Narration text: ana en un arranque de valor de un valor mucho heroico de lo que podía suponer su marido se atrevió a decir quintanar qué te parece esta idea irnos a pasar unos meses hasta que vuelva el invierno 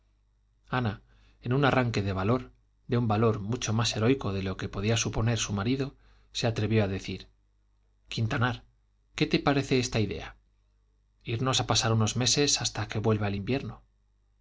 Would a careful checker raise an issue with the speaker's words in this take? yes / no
yes